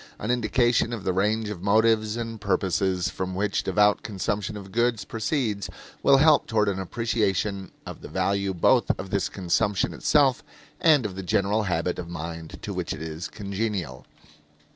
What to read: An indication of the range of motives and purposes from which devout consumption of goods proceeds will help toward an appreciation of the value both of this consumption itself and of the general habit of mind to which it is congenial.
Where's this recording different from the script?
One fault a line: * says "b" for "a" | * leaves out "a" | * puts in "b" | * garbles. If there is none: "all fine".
all fine